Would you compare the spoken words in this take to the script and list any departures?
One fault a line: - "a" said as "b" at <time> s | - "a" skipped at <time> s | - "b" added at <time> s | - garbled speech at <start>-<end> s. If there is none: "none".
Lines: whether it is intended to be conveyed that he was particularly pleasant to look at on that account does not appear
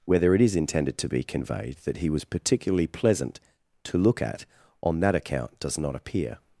none